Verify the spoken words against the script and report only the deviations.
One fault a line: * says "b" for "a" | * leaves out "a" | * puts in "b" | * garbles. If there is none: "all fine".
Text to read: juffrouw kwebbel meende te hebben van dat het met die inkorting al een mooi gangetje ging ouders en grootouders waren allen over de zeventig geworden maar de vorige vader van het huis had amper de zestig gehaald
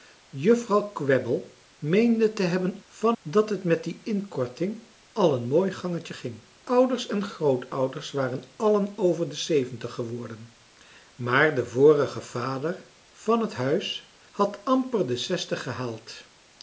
all fine